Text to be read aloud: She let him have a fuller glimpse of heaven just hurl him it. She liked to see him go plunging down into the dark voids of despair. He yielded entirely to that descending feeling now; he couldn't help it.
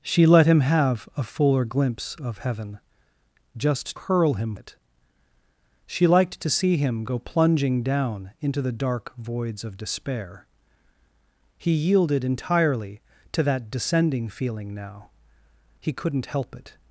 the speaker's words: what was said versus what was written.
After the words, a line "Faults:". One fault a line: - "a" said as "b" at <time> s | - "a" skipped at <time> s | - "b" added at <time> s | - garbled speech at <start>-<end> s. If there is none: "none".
She let him have a fuller glimpse of heaven just hurl him it. She liked to see him go plunging down into the dark voids of despair. He yielded entirely to that descending feeling now; he couldn't help it.
Faults:
none